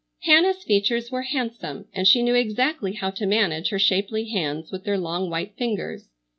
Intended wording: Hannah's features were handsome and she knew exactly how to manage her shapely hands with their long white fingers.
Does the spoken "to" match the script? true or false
true